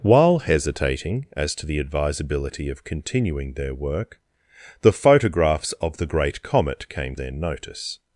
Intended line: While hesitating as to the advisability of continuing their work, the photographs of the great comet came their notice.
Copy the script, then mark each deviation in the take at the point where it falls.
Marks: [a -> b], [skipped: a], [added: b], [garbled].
While hesitating as to the advisability of continuing their work, the photographs of the great comet came their notice.